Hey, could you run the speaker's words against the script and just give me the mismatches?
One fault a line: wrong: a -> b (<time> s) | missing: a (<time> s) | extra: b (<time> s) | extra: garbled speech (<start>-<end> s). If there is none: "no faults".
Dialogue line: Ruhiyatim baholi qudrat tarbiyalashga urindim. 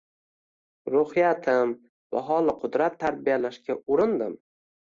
no faults